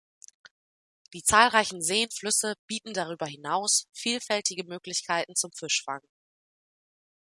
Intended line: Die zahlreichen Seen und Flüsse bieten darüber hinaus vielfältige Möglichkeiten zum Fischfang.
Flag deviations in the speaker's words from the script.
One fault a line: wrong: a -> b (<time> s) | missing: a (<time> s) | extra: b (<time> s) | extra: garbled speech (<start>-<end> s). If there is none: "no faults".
missing: und (2.1 s)